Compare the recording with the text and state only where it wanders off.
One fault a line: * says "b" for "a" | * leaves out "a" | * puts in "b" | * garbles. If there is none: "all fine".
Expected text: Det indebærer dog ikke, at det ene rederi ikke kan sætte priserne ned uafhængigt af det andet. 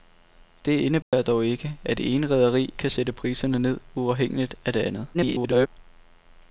* leaves out "ikke"
* garbles